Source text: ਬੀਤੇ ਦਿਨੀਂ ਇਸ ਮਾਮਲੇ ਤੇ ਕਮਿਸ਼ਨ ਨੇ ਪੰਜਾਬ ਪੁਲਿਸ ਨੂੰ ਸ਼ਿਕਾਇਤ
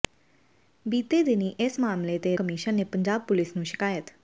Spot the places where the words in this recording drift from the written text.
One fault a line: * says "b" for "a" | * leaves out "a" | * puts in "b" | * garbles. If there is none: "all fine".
all fine